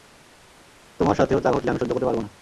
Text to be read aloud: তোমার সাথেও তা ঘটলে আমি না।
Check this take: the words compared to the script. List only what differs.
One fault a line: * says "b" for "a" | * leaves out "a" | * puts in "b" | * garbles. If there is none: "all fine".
* puts in "সহ্য করতে পারব"